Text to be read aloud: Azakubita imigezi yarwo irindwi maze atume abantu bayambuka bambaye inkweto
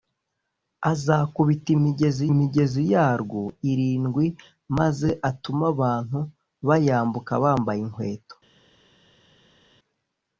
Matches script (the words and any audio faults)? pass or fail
fail